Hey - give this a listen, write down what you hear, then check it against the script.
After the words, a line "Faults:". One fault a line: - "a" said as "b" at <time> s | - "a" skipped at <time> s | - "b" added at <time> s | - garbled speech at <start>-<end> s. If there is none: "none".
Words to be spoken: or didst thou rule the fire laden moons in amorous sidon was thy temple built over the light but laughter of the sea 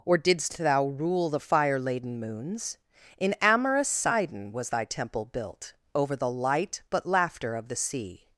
or didst thou rule the fire laden moons in amorous sidon was thy temple built over the light but laughter of the sea
Faults:
none